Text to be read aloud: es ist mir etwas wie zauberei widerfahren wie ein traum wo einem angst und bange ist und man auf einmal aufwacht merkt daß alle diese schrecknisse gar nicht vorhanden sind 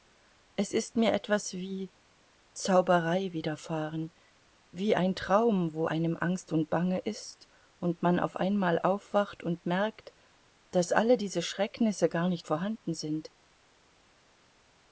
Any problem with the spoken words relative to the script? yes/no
yes